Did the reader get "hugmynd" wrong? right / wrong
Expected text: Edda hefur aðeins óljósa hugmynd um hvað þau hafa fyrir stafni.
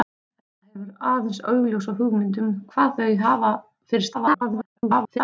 right